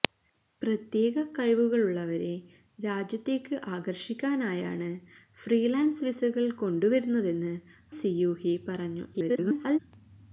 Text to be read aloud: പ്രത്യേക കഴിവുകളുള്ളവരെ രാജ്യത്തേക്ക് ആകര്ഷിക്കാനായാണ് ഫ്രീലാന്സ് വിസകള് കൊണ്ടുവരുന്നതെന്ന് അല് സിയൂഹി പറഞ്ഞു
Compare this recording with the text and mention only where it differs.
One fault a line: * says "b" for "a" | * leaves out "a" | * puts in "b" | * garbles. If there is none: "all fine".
* leaves out "അല്"
* garbles